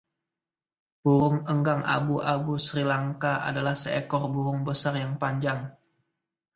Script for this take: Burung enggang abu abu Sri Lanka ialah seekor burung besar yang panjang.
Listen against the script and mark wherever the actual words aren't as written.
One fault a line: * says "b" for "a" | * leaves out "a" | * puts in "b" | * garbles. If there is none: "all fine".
* says "adalah" for "ialah"